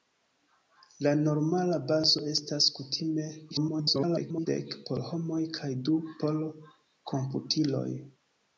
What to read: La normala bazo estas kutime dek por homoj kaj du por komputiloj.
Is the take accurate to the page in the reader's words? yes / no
no